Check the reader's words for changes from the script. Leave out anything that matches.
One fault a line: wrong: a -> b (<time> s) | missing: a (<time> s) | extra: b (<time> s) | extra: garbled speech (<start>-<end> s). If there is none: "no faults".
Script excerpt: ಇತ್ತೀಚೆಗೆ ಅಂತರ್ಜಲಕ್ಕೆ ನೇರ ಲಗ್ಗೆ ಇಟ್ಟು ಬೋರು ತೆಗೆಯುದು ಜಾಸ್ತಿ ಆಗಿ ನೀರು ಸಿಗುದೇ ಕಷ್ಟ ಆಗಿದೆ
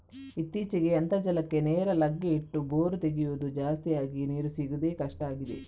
no faults